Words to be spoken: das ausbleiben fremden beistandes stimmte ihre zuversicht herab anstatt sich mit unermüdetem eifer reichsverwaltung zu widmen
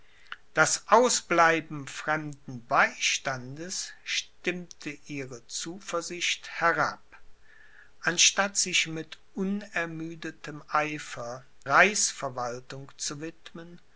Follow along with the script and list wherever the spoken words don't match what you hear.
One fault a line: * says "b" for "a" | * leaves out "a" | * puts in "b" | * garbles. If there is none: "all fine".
all fine